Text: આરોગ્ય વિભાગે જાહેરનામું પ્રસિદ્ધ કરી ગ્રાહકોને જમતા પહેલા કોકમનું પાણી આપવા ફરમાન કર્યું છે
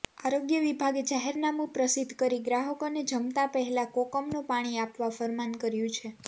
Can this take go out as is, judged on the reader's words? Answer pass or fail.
pass